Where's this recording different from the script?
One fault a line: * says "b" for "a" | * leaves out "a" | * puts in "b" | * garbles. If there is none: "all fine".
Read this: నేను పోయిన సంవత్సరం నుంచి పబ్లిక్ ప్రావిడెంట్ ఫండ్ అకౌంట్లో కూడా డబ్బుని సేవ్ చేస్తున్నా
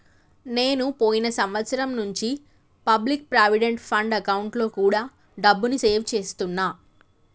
all fine